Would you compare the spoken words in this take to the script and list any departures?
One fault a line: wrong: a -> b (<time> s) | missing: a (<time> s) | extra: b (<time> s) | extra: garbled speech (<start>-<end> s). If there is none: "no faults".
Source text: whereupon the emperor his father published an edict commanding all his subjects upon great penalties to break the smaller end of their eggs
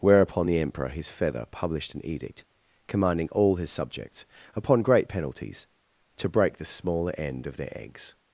wrong: father -> feather (1.1 s)